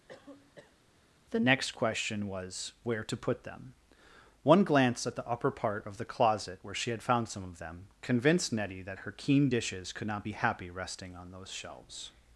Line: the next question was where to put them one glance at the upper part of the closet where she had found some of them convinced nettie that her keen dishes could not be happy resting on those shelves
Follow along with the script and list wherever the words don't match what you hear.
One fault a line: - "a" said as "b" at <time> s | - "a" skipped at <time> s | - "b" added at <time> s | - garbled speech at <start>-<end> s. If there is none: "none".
none